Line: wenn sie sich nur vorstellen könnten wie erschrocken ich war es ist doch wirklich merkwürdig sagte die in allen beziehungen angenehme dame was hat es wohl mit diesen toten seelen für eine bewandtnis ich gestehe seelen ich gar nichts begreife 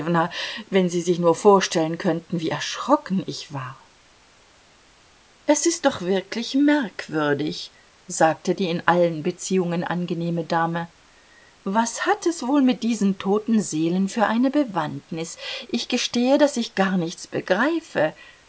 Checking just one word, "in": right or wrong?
right